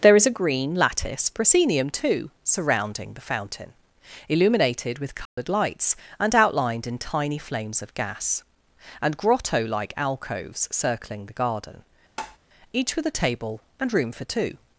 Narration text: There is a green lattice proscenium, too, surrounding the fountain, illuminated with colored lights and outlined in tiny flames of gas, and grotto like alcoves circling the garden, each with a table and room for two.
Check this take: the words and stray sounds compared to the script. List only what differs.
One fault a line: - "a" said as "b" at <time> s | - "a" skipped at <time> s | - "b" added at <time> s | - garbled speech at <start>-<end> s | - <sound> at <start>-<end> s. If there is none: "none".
- dropout at 5.3-5.4 s
- tap at 12.2-12.4 s